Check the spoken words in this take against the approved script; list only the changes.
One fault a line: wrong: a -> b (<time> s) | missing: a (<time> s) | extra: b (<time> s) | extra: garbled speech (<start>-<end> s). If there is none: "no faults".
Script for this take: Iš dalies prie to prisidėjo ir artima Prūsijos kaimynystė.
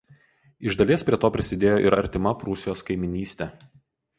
no faults